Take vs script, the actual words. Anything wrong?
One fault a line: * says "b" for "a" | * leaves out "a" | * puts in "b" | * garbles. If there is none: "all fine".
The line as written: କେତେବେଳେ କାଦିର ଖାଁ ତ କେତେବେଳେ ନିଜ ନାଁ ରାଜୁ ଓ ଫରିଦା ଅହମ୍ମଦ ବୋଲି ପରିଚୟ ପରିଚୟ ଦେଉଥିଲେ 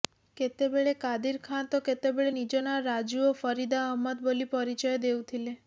* leaves out "ପରିଚୟ"